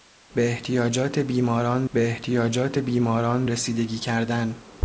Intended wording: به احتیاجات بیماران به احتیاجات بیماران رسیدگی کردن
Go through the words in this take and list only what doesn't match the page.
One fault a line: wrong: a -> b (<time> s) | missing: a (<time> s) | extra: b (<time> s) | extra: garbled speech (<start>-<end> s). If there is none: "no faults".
no faults